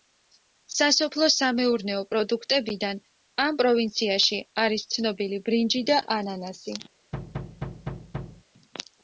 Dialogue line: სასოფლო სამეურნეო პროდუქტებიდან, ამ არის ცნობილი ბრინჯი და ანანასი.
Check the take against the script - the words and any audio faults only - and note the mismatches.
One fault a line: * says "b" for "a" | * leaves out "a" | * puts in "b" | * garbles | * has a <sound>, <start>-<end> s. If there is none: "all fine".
* puts in "პროვინციაში"
* has a thud, 7.1-8.4 s